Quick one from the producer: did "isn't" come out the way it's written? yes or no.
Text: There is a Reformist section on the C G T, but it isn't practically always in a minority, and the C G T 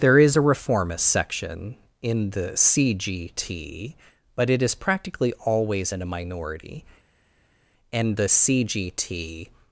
no